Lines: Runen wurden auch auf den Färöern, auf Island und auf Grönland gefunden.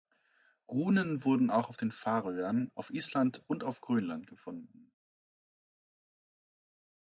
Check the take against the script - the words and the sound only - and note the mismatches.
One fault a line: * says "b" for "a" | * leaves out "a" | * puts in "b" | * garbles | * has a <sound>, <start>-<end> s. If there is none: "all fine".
all fine